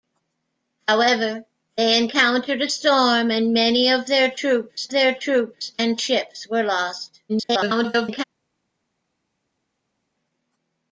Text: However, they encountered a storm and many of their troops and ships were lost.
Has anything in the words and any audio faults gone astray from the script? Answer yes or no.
yes